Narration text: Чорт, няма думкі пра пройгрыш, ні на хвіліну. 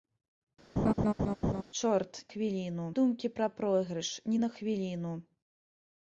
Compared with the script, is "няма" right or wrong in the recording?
wrong